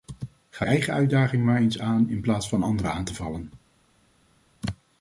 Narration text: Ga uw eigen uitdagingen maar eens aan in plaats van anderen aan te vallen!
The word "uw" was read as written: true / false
false